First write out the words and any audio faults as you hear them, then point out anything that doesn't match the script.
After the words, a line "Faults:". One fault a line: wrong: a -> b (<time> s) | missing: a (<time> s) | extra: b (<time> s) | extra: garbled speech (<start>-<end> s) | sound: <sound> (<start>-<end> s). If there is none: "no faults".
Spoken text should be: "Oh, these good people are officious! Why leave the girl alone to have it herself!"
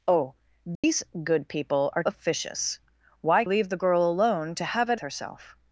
"Oh, these good people are officious! Why leave the girl alone to have it herself!"
Faults:
sound: dropout (0.8-0.8 s)